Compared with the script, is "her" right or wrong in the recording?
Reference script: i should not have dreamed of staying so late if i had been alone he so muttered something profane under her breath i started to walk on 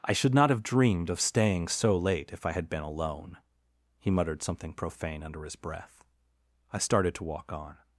wrong